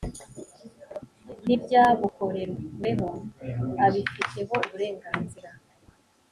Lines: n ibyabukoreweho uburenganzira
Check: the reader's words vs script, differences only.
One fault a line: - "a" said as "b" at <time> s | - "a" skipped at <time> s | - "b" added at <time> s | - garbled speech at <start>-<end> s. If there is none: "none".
- "abifiteho" added at 3.8 s